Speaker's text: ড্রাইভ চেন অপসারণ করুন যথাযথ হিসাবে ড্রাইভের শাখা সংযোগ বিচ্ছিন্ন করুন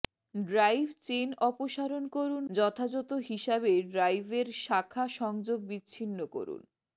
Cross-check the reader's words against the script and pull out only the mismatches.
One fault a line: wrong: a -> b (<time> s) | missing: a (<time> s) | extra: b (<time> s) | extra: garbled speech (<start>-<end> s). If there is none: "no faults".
no faults